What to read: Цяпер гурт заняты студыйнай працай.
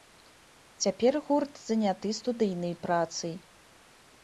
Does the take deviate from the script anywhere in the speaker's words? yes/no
no